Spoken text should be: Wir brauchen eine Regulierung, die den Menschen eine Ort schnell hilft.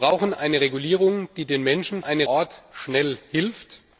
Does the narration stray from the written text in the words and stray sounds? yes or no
no